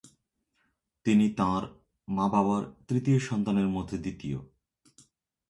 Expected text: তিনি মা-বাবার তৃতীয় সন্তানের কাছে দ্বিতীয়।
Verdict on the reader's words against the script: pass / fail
fail